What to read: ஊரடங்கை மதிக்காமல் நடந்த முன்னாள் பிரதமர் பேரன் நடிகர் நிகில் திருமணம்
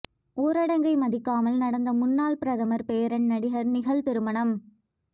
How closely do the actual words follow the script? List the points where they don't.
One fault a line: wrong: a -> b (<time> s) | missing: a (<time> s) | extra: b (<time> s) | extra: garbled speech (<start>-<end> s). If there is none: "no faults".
no faults